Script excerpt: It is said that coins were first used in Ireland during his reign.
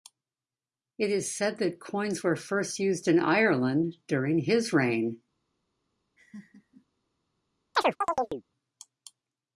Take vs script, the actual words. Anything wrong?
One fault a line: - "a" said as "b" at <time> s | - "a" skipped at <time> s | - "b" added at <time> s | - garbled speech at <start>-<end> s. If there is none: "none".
none